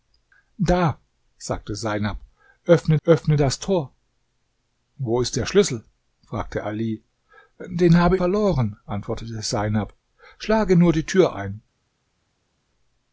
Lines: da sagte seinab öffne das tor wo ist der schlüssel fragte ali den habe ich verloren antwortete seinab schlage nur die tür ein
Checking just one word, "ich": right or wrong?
wrong